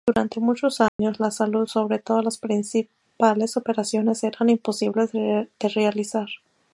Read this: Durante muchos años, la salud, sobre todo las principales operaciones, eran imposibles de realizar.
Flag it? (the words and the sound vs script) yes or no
yes